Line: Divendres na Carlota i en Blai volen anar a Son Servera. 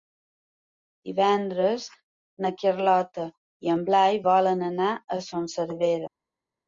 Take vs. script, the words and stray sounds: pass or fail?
pass